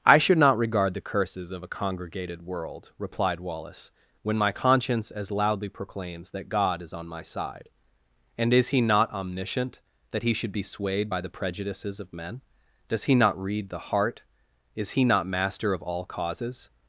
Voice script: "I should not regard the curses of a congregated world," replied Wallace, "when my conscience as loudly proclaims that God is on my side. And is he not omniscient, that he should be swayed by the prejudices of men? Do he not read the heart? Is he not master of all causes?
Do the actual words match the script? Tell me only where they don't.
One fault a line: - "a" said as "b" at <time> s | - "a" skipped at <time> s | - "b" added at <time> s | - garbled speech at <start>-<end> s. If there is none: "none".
- "Do" said as "Does" at 12.9 s